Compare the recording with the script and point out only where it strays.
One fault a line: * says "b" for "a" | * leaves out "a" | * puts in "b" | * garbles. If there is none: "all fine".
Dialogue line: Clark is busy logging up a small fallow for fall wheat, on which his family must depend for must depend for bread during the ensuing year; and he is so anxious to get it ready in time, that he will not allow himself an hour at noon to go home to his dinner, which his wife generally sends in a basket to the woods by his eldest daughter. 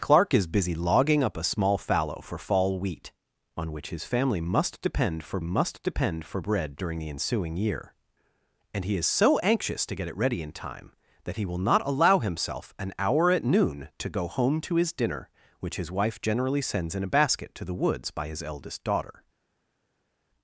all fine